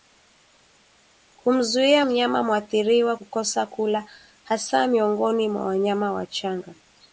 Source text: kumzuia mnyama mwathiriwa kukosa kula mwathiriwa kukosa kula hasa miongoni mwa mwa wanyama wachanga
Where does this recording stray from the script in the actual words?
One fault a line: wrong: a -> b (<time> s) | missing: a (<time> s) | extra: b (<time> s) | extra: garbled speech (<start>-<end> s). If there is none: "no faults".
missing: mwathiriwa kukosa kula (4.1 s)
missing: mwa (5.6 s)